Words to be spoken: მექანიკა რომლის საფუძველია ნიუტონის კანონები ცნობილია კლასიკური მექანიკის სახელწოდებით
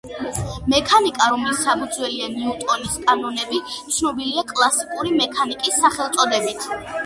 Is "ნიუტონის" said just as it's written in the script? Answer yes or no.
yes